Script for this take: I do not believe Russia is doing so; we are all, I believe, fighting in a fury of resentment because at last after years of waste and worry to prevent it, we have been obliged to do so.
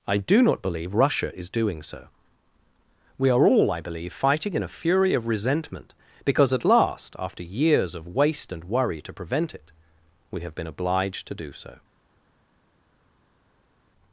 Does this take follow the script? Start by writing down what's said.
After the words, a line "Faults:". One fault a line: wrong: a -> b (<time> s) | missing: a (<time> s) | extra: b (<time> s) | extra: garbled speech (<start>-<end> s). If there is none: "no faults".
I do not believe Russia is doing so; we are all, I believe, fighting in a fury of resentment because at last after years of waste and worry to prevent it, we have been obliged to do so.
Faults:
no faults